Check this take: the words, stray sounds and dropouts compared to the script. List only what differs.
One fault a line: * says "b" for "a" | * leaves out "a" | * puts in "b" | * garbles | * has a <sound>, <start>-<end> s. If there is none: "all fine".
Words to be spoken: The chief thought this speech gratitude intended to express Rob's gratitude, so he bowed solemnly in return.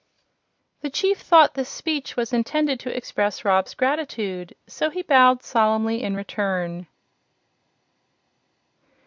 * says "was" for "gratitude"